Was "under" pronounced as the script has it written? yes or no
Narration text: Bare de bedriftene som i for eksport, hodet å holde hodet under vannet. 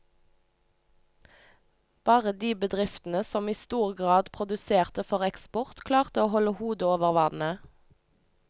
no